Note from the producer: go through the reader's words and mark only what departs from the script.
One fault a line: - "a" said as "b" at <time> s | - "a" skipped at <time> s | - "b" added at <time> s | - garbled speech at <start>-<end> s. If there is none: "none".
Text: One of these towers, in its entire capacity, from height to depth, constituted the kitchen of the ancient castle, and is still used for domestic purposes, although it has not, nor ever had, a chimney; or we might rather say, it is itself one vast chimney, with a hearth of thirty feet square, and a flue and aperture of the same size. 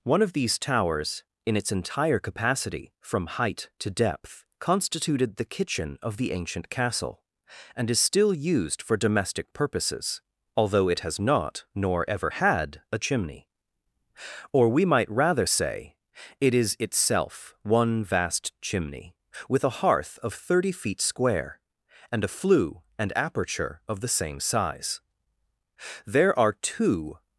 - "There are two" added at 26.0 s